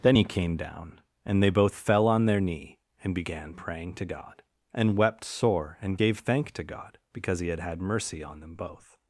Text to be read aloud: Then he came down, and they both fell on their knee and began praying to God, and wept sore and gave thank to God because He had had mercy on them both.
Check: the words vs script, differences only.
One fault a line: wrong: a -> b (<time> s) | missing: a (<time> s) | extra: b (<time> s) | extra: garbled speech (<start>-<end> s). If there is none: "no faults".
no faults